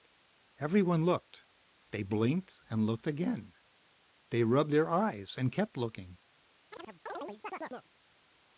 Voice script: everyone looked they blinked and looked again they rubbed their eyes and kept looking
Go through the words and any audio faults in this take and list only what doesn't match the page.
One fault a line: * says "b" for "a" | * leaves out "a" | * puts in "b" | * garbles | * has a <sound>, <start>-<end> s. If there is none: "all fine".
* has a chirp, 6.7-7.9 s